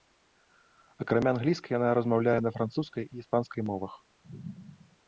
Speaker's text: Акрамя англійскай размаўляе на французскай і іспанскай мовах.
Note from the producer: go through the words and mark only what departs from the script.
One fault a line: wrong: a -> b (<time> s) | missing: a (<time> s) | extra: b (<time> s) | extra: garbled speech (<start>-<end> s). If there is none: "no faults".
extra: яна (1.8 s)